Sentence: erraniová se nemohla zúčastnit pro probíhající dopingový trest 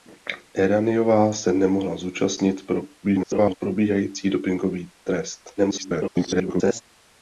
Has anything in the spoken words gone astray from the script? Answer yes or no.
yes